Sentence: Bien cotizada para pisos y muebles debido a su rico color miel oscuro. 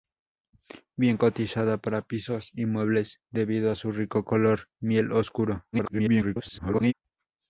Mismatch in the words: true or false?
true